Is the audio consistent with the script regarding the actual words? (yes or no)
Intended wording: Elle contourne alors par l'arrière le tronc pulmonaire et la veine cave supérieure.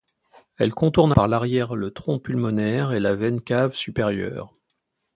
no